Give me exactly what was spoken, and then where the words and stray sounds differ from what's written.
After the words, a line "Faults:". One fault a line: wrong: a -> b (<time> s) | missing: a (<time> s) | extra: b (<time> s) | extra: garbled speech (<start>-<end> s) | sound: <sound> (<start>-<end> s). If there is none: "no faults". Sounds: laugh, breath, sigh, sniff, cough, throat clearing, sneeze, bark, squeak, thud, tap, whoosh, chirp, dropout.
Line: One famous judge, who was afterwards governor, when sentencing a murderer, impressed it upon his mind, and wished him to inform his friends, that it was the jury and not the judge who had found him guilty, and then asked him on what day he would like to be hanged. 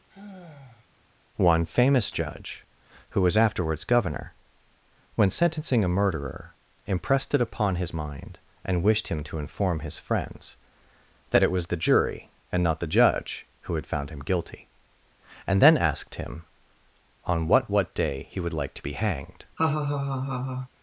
One famous judge, who was afterwards governor, when sentencing a murderer, impressed it upon his mind, and wished him to inform his friends, that it was the jury and not the judge who had found him guilty, and then asked him on what what day he would like to be hanged.
Faults:
sound: sigh (0.1-0.9 s)
extra: what (17.7 s)
sound: laugh (19.6-20.7 s)